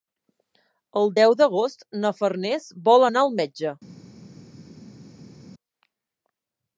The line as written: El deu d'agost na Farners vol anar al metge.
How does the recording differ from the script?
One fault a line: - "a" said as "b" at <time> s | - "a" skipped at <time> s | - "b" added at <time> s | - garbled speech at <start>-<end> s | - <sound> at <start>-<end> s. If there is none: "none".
none